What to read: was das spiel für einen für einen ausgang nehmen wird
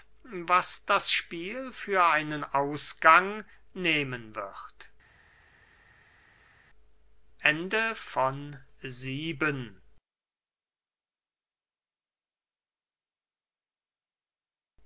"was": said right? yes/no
yes